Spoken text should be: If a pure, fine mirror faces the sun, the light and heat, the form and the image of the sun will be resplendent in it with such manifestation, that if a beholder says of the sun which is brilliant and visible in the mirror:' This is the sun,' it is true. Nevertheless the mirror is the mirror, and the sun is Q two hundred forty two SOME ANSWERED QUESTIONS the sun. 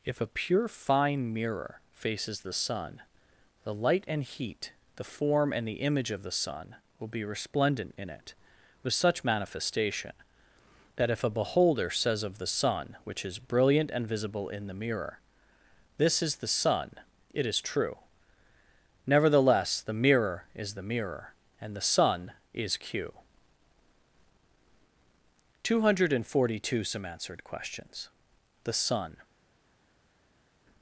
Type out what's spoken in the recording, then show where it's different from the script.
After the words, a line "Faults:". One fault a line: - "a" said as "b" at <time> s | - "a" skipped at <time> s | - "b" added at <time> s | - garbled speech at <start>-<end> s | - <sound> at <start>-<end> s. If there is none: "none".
If a pure, fine mirror faces the sun, the light and heat, the form and the image of the sun will be resplendent in it with such manifestation, that if a beholder says of the sun which is brilliant and visible in the mirror:' This is the sun,' it is true. Nevertheless the mirror is the mirror, and the sun is Q two hundred forty two SOME ANSWERED QUESTIONS the sun.
Faults:
none